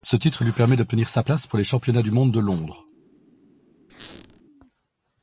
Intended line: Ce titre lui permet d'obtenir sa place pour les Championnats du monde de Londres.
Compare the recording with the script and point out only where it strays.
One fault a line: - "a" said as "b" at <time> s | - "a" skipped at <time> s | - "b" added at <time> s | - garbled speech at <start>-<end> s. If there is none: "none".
none